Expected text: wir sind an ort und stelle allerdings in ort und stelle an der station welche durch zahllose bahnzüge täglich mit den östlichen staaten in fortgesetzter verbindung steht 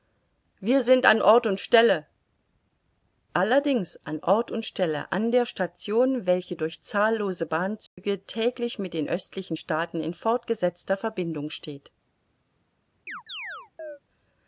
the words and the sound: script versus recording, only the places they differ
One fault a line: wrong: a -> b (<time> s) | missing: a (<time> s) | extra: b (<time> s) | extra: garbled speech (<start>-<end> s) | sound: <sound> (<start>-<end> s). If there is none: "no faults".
wrong: in -> an (4.0 s)
sound: dropout (7.9-8.0 s)
sound: chirp (13.1-14.0 s)